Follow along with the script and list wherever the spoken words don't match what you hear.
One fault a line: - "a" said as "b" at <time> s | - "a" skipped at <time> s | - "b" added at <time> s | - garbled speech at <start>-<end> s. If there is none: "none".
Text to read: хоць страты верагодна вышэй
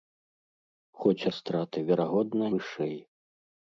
none